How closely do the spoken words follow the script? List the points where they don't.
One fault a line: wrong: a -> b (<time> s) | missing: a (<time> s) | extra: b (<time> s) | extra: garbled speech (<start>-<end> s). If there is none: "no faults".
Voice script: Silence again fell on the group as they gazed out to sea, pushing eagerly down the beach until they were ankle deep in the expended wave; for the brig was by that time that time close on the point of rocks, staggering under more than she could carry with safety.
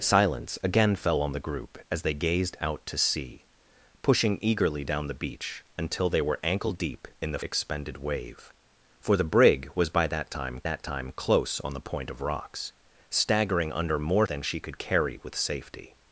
no faults